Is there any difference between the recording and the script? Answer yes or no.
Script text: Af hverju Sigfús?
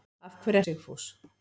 no